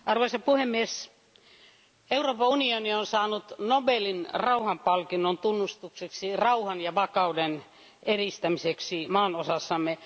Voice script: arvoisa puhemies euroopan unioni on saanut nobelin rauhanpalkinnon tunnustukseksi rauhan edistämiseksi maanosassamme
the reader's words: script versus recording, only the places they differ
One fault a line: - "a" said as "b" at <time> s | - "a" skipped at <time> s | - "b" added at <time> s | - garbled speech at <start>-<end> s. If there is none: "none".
- "ja vakauden" added at 6.8 s